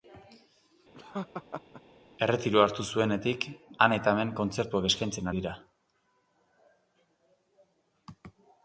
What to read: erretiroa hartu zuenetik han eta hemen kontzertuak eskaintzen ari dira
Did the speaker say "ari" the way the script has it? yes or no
no